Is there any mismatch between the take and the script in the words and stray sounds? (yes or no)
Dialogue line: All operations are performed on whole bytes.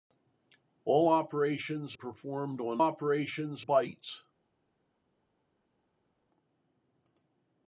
yes